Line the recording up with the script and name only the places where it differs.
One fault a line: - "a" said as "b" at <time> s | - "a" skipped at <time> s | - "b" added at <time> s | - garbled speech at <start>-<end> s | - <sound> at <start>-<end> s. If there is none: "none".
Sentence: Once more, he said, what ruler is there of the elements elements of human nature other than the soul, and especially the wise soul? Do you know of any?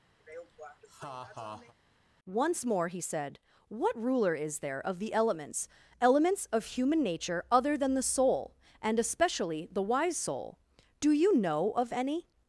- laugh at 0.2-1.7 s